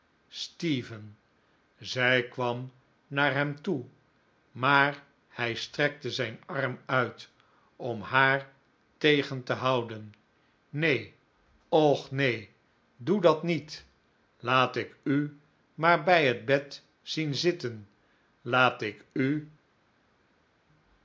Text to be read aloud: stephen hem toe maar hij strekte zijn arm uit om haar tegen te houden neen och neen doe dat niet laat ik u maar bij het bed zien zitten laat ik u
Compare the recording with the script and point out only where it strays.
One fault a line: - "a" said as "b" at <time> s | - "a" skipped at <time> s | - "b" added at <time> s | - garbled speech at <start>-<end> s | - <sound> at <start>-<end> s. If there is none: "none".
- "zij kwam naar" added at 1.8 s